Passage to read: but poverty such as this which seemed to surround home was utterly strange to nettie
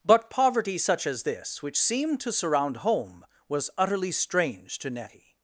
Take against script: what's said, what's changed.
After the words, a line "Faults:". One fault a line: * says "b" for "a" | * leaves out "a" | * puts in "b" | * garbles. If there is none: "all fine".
but poverty such as this which seemed to surround home was utterly strange to nettie
Faults:
all fine